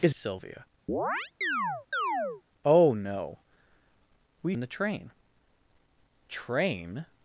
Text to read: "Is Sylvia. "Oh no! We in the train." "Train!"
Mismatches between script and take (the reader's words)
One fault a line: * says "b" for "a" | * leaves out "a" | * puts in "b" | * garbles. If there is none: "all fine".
all fine